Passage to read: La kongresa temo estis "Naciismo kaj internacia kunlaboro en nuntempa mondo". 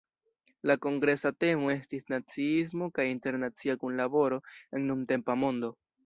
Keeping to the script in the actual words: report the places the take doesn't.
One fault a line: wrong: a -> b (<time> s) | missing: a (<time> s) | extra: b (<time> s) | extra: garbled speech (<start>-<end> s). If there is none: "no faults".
no faults